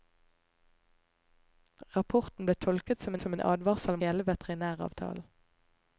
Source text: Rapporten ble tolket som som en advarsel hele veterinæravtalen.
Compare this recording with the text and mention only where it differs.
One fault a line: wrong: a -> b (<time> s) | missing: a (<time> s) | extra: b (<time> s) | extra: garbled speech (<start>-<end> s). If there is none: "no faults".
no faults